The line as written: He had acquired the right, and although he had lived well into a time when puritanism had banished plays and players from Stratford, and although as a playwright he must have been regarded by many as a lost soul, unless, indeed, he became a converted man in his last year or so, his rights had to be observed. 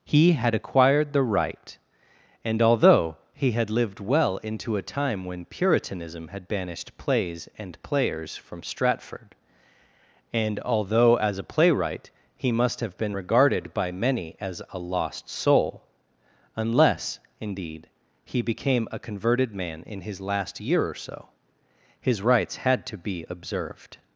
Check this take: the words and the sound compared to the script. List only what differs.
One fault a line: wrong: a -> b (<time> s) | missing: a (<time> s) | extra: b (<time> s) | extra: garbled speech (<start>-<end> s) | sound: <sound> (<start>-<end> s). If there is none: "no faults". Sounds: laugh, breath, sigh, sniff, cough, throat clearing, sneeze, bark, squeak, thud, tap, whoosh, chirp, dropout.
no faults